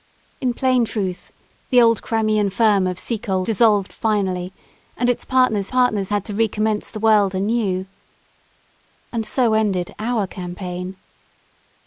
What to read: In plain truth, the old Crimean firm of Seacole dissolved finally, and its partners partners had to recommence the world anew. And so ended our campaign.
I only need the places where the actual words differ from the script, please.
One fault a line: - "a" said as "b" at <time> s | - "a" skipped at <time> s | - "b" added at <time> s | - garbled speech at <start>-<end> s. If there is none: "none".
none